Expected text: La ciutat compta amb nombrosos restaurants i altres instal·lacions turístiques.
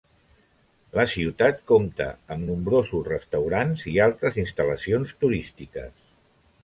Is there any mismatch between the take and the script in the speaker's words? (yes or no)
no